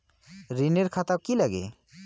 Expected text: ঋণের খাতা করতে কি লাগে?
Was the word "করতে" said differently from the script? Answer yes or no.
yes